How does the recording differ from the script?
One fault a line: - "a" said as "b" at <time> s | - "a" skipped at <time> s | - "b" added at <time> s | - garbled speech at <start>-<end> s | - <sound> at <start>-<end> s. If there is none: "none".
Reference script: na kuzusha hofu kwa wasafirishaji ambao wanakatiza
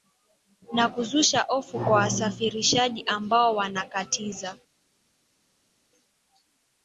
none